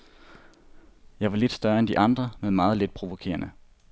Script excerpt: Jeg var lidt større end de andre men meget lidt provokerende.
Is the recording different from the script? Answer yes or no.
no